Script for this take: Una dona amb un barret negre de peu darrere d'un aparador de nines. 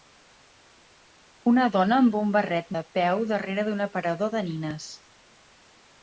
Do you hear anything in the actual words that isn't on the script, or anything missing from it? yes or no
yes